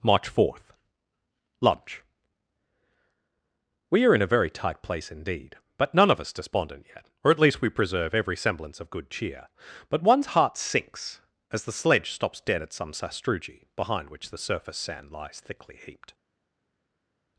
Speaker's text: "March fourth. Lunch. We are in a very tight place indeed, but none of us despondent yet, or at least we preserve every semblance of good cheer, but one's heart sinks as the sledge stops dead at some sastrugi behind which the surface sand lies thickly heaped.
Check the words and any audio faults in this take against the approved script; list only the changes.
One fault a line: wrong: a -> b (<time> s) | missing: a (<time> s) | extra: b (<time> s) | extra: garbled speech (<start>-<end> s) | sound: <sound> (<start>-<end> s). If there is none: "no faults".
no faults